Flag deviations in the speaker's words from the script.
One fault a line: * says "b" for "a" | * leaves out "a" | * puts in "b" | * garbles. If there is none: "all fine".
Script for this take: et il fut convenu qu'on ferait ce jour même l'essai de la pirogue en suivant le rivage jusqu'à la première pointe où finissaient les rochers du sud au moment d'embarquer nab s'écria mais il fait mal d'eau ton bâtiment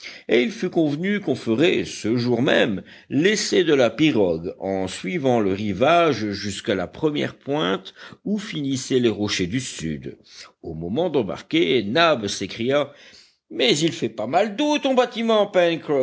* puts in "pas"